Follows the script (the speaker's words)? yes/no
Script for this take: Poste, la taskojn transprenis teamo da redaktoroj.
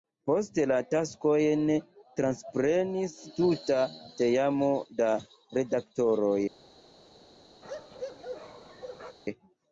no